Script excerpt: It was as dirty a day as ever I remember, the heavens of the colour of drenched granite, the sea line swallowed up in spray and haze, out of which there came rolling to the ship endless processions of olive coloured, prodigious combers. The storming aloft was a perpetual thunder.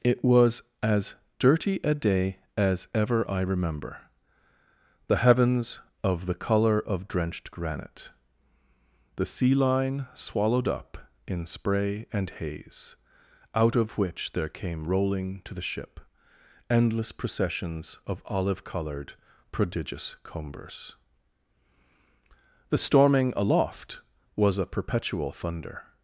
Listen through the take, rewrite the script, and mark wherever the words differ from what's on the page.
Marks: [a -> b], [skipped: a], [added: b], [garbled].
It was as dirty a day as ever I remember, the heavens of the colour of drenched granite, the sea line swallowed up in spray and haze, out of which there came rolling to the ship endless processions of olive coloured, prodigious combers. The storming aloft was a perpetual thunder.